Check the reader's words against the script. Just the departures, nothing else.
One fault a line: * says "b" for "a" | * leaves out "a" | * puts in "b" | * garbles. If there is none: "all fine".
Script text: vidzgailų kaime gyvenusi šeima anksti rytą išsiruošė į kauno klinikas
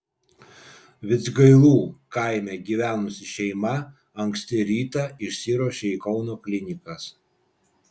all fine